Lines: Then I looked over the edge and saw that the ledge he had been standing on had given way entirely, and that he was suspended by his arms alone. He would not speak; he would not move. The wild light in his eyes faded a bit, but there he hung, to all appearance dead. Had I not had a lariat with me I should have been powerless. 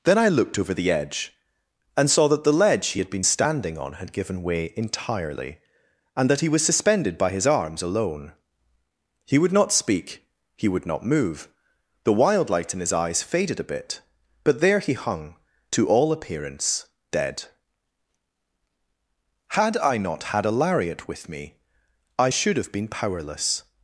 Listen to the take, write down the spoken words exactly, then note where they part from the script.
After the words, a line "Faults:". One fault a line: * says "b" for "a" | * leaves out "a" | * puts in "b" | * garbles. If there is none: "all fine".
Then I looked over the edge and saw that the ledge he had been standing on had given way entirely, and that he was suspended by his arms alone. He would not speak; he would not move. The wild light in his eyes faded a bit, but there he hung, to all appearance dead. Had I not had a lariat with me I should have been powerless.
Faults:
all fine